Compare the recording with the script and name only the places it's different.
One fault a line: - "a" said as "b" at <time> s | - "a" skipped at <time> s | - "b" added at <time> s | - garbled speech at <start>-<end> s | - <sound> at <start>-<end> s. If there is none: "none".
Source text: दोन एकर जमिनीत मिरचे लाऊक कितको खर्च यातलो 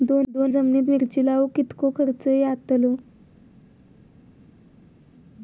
- "एकर" skipped at 0.5 s